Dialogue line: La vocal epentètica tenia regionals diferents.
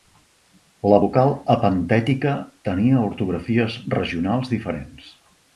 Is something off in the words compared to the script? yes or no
yes